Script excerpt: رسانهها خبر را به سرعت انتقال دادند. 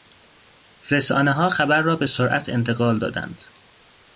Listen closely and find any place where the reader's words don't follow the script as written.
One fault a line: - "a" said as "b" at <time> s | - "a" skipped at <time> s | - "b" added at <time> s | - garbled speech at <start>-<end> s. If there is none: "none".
none